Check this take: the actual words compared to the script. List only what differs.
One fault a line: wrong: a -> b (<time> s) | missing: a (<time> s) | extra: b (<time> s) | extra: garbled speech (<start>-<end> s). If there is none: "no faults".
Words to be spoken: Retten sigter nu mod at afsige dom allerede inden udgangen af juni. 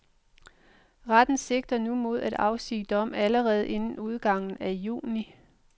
no faults